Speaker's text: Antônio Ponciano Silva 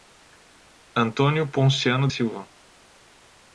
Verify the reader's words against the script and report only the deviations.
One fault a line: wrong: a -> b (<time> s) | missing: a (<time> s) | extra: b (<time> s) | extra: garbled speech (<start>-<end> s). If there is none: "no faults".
no faults